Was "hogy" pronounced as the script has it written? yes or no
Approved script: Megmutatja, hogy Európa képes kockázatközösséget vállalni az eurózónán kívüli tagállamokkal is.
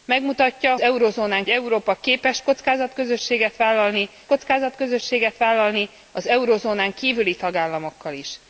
no